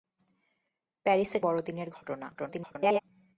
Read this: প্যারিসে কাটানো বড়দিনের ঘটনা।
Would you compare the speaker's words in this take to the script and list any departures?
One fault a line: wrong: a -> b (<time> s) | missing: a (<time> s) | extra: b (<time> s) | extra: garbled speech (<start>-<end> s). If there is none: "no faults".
missing: কাটানো (1.4 s)
extra: garbled speech (2.3-3.0 s)